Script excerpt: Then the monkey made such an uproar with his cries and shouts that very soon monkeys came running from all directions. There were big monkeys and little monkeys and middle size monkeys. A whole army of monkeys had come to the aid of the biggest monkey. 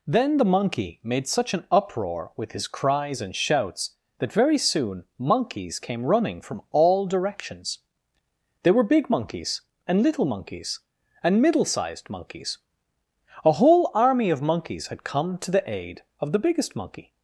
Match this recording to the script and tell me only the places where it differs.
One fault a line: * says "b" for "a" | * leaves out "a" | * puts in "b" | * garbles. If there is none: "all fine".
* says "sized" for "size"